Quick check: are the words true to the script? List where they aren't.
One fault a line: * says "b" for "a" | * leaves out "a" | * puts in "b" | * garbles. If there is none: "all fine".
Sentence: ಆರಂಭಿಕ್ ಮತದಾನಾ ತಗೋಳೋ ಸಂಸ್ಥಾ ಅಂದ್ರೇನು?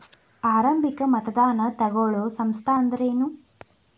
all fine